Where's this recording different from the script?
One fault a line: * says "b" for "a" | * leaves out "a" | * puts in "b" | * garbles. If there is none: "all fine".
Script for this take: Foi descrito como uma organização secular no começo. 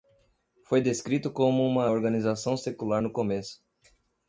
all fine